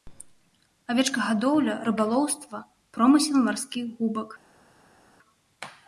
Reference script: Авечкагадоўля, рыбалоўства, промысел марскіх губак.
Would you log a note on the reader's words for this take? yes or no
no